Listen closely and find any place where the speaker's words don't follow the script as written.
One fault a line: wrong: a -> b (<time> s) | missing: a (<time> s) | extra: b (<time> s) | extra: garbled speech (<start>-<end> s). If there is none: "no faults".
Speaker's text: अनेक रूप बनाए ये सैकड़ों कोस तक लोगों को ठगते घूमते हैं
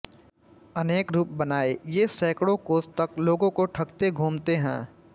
no faults